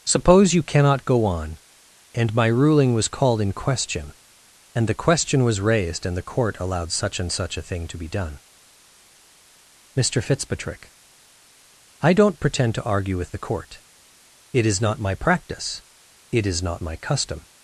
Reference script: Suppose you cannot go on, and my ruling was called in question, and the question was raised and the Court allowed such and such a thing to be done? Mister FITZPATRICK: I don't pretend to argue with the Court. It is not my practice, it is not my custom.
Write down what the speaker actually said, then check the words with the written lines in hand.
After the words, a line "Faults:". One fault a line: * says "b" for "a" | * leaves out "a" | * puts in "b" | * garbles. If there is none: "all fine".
Suppose you cannot go on, and my ruling was called in question, and the question was raised and the Court allowed such and such a thing to be done? Mister FITZPATRICK: I don't pretend to argue with the Court. It is not my practice, it is not my custom.
Faults:
all fine